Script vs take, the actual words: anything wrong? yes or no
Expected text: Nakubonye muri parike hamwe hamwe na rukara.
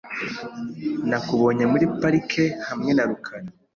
yes